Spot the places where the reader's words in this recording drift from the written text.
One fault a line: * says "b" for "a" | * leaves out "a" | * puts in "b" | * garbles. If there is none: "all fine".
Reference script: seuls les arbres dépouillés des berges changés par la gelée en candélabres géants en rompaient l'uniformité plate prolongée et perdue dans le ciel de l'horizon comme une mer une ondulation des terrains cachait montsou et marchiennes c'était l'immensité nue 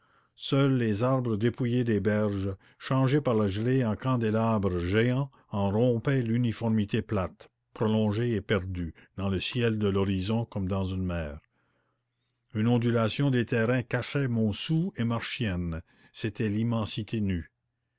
* puts in "dans"